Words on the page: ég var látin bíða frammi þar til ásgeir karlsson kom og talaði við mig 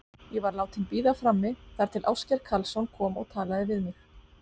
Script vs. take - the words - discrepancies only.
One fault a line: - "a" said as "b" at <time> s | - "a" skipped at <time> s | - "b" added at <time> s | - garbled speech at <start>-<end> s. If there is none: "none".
none